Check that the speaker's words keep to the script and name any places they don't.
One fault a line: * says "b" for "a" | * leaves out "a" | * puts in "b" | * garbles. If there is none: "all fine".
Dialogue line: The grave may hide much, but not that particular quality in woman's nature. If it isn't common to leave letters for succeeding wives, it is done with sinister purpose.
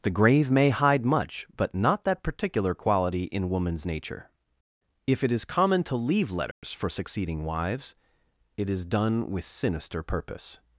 * says "is" for "isn't"